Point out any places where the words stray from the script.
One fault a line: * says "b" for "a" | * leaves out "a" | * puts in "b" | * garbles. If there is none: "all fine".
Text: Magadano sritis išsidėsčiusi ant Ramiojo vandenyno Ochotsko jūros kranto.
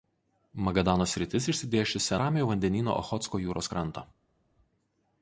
* leaves out "ant"